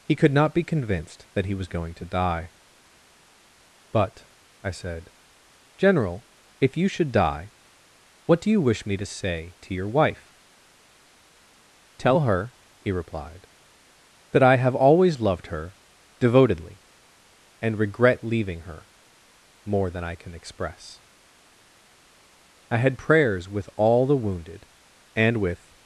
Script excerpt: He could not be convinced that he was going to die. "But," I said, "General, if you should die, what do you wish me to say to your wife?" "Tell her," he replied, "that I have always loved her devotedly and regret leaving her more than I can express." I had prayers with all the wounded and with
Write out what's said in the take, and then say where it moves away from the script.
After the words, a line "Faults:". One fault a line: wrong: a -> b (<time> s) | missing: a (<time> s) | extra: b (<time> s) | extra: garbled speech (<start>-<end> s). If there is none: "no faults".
He could not be convinced that he was going to die. "But," I said, "General, if you should die, what do you wish me to say to your wife?" "Tell her," he replied, "that I have always loved her devotedly and regret leaving her more than I can express." I had prayers with all the wounded and with
Faults:
no faults